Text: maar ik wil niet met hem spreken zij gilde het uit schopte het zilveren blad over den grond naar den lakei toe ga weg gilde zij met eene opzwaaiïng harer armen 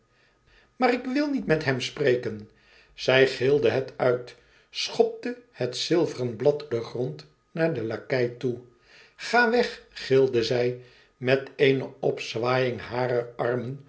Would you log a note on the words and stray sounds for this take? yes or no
yes